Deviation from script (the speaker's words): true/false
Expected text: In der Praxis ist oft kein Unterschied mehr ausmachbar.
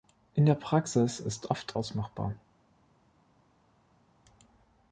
true